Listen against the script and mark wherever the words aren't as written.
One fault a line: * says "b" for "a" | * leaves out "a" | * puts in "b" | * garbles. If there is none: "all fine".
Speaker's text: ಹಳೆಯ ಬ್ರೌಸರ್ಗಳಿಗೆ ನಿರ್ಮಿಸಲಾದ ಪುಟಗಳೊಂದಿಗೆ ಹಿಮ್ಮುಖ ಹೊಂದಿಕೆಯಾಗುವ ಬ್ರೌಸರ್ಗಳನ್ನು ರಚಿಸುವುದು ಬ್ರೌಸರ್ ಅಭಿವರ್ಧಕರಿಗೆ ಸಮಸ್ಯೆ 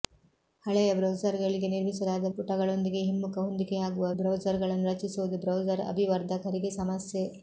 all fine